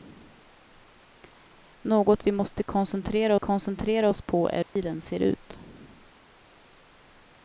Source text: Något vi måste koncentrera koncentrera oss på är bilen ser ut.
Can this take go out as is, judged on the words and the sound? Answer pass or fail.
fail